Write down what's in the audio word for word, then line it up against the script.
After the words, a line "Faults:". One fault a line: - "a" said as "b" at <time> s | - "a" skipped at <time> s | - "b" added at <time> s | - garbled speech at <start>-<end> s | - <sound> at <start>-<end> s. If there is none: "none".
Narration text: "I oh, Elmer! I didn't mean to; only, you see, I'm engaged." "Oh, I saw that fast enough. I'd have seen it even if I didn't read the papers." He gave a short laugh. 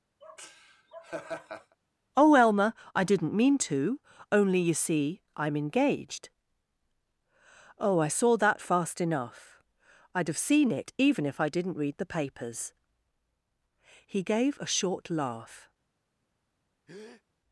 oh, Elmer! I didn't mean to; only, you see, I'm engaged." "Oh, I saw that fast enough. I'd have seen it even if I didn't read the papers." He gave a short laugh.
Faults:
- laugh at 0.2-1.8 s
- "I" skipped at 2.1 s
- breath at 16.9-17.2 s